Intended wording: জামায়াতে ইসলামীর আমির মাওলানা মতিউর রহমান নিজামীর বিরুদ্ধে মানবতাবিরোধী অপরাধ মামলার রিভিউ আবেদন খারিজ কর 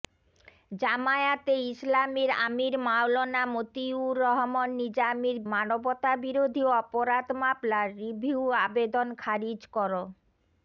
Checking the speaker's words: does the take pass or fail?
fail